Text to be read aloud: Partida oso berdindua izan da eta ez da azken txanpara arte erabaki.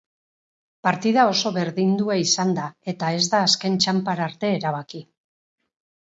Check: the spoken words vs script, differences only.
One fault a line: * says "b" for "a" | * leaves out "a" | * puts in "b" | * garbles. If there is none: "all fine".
all fine